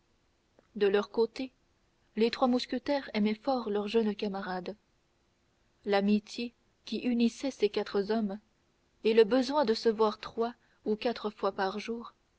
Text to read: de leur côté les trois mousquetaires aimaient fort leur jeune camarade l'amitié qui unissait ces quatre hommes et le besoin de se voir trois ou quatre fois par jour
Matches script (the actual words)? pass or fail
pass